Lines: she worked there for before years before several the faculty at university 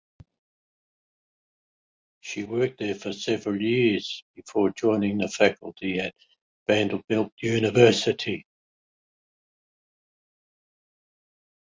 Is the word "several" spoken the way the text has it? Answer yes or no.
no